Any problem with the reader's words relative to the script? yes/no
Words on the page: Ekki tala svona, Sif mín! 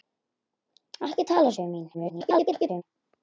yes